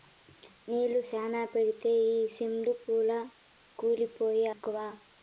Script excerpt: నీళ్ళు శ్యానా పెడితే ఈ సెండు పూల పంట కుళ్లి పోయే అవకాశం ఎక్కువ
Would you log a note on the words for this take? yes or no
yes